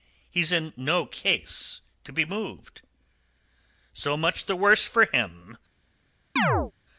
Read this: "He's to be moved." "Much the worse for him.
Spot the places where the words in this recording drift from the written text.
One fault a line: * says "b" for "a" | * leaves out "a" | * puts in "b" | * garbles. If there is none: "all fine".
* puts in "in no case"
* puts in "So"